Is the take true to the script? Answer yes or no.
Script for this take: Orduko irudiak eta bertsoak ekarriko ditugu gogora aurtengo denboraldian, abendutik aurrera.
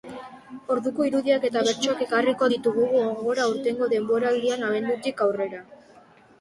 yes